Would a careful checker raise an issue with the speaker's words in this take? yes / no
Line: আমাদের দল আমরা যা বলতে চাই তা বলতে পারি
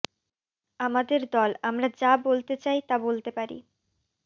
no